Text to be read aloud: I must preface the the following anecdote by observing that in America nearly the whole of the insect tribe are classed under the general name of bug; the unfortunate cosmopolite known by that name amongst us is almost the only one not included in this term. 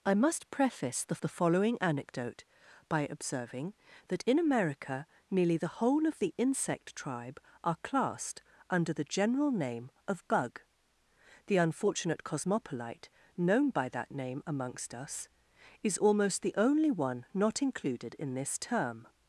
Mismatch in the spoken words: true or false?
false